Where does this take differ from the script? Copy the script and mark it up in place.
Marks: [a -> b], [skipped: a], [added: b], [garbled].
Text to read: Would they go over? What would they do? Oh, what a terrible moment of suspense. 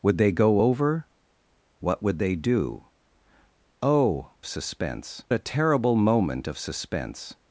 Would they go over? What would they do? Oh, [what -> suspense] a terrible moment of suspense.